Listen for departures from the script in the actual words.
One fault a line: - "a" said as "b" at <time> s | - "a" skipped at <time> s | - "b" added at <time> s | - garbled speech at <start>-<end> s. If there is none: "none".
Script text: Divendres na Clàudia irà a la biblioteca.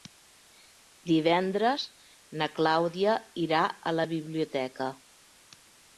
none